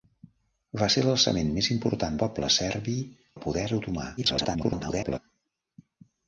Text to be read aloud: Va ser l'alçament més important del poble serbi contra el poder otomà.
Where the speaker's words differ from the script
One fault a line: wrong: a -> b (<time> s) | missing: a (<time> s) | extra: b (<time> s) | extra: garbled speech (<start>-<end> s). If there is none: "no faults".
missing: del (2.2 s)
missing: contra (3.0 s)
extra: garbled speech (4.2-5.2 s)